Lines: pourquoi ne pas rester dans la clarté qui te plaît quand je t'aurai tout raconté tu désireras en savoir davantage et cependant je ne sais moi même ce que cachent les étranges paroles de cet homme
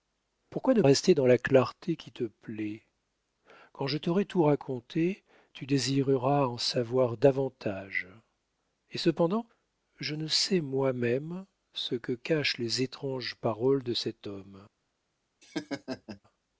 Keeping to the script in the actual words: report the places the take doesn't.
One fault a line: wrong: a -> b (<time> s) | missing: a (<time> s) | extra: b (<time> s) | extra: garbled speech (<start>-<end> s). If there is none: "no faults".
missing: pas (0.8 s)